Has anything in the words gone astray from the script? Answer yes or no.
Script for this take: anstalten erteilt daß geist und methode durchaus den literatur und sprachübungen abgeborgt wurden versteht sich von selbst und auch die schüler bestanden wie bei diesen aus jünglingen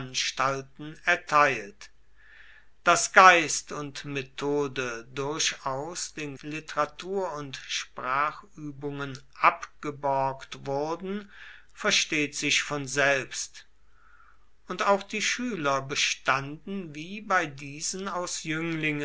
no